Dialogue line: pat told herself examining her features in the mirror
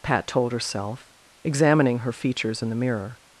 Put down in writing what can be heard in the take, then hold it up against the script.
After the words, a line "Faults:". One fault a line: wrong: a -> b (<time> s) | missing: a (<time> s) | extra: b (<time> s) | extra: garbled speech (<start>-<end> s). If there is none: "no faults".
pat told herself examining her features in the mirror
Faults:
no faults